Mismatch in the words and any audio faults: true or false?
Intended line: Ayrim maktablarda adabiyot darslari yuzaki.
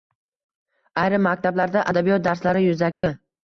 true